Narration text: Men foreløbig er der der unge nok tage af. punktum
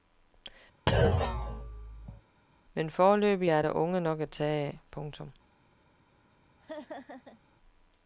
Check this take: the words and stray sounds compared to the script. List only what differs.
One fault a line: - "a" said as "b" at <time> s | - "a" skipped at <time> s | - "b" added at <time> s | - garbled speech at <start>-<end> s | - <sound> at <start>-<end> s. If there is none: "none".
- thud at 0.9-2.2 s
- "der" skipped at 3.7 s
- "at" added at 4.2 s
- laugh at 6.6-7.4 s